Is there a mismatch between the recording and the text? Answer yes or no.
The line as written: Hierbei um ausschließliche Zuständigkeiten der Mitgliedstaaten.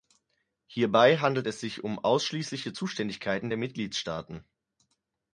yes